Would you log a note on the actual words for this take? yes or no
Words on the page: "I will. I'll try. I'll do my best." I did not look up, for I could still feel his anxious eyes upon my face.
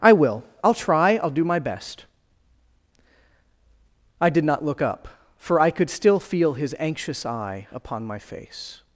yes